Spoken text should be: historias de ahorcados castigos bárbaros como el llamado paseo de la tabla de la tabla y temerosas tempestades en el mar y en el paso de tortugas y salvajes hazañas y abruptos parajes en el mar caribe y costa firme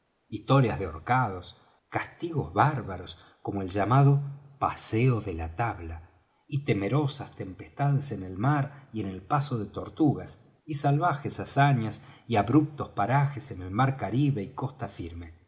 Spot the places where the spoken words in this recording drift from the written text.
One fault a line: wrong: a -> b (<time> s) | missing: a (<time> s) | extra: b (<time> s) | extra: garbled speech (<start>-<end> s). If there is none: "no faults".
missing: de la tabla (6.1 s)